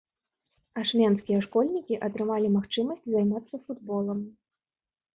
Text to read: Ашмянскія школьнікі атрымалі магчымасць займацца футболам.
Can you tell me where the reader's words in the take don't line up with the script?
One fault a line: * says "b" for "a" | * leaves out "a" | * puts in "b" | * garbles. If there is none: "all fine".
all fine